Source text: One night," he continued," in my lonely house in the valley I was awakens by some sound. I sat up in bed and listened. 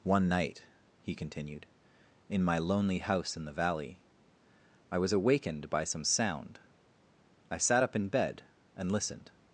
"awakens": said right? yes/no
no